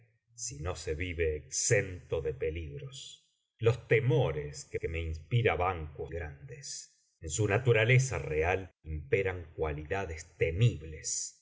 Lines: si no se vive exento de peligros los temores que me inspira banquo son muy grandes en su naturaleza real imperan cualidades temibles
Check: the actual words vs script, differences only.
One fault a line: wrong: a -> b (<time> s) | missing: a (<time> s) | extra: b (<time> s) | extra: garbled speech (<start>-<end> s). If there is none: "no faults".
extra: que (4.7 s)
missing: son muy (6.1 s)